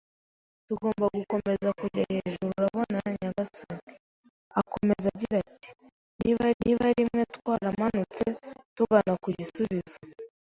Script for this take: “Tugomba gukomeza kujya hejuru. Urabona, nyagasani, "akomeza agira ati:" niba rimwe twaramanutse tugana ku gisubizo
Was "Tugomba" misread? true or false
false